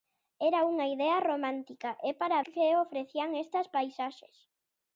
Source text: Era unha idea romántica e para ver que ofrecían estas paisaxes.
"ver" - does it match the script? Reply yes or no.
no